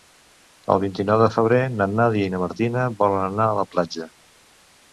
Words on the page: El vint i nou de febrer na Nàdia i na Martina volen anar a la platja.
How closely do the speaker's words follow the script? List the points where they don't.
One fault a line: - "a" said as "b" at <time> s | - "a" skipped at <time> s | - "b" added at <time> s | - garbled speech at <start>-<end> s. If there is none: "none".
none